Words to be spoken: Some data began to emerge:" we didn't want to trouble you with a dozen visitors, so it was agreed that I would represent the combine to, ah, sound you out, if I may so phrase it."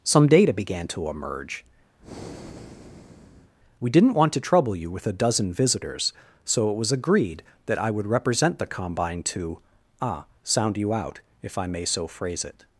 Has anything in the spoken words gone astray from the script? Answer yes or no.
no